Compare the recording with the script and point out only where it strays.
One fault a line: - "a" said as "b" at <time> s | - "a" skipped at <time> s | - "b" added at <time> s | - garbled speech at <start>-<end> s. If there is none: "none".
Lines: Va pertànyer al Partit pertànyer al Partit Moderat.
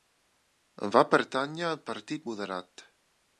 - "pertànyer al Partit" skipped at 2.3 s